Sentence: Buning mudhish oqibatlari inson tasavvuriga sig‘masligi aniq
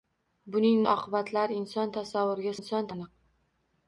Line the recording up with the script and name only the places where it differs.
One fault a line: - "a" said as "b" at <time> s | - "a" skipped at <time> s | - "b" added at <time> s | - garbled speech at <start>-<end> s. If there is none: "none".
- "mudhish" skipped at 0.8 s
- "sig‘masligi" said as "inson" at 2.6 s